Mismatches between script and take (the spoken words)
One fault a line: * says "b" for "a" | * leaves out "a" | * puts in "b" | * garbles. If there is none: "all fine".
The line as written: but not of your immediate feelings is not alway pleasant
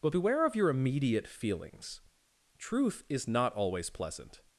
* says "beware" for "not"
* puts in "truth"
* says "always" for "alway"